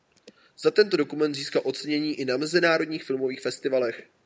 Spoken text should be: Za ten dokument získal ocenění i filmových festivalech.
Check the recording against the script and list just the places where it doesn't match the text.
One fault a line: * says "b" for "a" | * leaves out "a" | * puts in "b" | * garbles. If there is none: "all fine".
* says "tento" for "ten"
* puts in "na mezinárodních"